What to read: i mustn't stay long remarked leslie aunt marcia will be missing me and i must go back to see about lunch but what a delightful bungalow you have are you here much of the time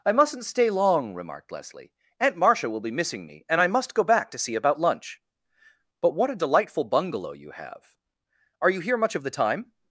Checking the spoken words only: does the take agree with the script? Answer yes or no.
yes